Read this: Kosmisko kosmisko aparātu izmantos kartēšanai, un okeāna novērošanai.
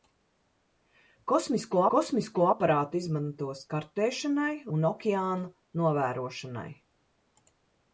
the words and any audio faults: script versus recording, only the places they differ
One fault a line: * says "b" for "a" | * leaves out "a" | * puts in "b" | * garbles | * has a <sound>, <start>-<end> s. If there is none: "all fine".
all fine